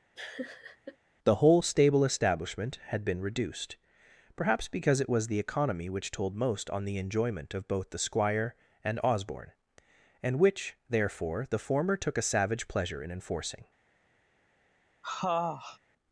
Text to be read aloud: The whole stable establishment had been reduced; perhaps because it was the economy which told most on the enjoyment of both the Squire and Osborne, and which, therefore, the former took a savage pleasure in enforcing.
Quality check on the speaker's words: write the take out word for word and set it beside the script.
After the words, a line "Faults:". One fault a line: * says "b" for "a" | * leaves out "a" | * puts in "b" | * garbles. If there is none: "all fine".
The whole stable establishment had been reduced; perhaps because it was the economy which told most on the enjoyment of both the Squire and Osborne, and which, therefore, the former took a savage pleasure in enforcing.
Faults:
all fine